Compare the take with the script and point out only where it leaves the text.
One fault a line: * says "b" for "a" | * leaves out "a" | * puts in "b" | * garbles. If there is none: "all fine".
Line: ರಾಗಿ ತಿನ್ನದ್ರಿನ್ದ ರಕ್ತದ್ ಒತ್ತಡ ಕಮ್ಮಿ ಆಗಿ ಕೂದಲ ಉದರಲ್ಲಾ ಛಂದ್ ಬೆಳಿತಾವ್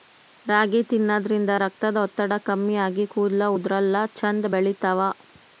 all fine